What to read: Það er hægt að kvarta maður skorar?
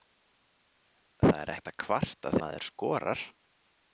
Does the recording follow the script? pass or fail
pass